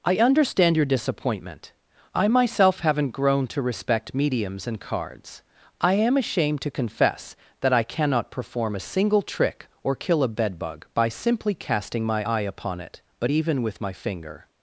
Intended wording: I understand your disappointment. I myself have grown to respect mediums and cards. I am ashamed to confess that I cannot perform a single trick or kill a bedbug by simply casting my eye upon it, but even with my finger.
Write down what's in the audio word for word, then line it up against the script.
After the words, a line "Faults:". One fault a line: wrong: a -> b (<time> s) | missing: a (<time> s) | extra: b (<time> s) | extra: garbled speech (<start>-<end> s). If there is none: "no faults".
I understand your disappointment. I myself haven't grown to respect mediums and cards. I am ashamed to confess that I cannot perform a single trick or kill a bedbug by simply casting my eye upon it, but even with my finger.
Faults:
wrong: have -> haven't (2.8 s)